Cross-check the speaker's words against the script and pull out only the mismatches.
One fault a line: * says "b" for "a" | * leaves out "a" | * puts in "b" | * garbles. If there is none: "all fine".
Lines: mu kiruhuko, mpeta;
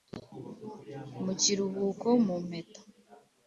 * puts in "mu"